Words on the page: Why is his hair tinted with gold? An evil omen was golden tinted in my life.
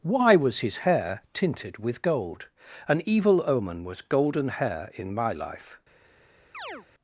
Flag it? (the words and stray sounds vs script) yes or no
yes